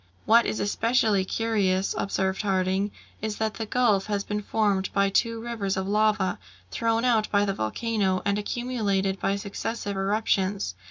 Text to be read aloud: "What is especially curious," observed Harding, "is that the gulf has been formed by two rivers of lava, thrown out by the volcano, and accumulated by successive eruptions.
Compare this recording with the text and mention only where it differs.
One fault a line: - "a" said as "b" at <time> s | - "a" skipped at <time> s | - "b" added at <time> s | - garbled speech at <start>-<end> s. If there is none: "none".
none